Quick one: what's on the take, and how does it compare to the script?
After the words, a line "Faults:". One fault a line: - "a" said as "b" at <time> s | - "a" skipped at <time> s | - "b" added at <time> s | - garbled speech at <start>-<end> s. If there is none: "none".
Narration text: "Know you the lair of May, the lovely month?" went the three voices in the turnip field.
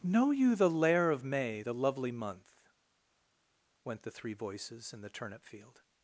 "Know you the lair of May, the lovely month?" went the three voices in the turnip field.
Faults:
none